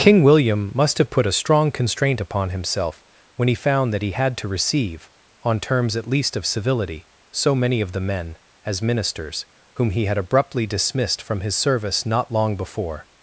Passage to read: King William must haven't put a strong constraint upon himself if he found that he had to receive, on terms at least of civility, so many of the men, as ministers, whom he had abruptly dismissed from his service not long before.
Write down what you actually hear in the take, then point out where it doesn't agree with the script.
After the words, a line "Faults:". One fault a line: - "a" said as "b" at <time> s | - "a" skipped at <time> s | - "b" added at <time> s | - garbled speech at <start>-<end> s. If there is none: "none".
King William must have put a strong constraint upon himself when he found that he had to receive, on terms at least of civility, so many of the men, as ministers, whom he had abruptly dismissed from his service not long before.
Faults:
- "haven't" said as "have" at 1.0 s
- "if" said as "when" at 3.4 s